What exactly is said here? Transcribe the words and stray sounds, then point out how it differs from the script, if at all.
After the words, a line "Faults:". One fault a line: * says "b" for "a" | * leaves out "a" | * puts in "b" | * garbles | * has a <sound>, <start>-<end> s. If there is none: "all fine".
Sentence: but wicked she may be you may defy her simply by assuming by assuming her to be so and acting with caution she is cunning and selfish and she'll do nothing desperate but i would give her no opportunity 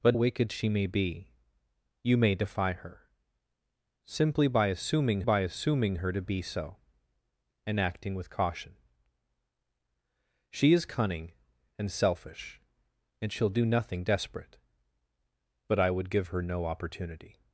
but wicked she may be you may defy her simply by assuming by assuming her to be so and acting with caution she is cunning and selfish and she'll do nothing desperate but i would give her no opportunity
Faults:
all fine